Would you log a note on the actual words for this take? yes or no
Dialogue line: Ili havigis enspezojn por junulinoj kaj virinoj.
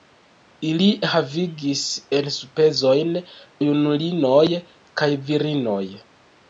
yes